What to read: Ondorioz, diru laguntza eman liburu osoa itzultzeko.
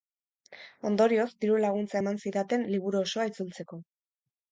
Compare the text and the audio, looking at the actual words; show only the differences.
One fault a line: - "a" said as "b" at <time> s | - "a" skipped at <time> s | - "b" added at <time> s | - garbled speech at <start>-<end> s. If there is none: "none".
- "zidaten" added at 2.3 s